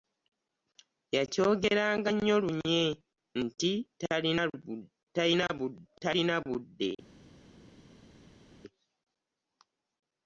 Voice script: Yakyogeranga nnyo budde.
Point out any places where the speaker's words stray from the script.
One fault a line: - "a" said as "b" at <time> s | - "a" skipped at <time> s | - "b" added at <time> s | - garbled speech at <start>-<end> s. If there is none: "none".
- "lunye nti talina" added at 2.4 s